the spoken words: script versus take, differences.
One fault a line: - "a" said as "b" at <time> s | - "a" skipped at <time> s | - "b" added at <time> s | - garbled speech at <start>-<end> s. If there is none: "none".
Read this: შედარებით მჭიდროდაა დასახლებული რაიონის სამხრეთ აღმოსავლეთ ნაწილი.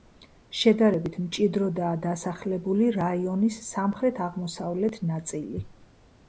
none